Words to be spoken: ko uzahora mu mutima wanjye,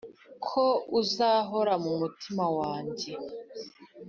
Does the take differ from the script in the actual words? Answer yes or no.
no